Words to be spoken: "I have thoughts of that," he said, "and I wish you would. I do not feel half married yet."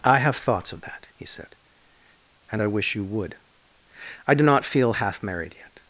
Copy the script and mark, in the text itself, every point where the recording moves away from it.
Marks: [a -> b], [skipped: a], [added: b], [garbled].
"I have thoughts of that," he said, "and I wish you would. I do not feel half married yet."